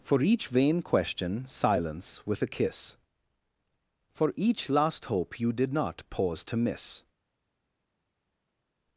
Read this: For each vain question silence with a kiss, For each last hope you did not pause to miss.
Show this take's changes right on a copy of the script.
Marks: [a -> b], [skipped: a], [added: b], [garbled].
For each vain question silence with a kiss, For each last hope you did not pause to miss.